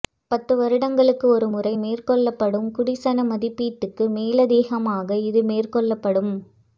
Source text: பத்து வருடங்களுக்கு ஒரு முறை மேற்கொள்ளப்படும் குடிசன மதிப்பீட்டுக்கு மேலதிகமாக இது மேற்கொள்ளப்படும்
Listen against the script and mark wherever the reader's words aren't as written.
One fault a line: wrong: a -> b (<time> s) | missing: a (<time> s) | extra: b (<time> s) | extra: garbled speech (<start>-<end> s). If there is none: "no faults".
no faults